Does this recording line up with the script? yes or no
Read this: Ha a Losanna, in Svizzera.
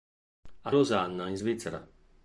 yes